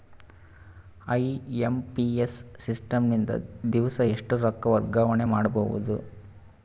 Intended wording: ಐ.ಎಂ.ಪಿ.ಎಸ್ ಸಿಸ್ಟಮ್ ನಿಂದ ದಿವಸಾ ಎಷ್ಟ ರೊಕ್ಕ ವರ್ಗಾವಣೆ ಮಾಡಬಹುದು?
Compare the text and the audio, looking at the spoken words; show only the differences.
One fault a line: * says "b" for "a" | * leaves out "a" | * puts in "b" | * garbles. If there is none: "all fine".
all fine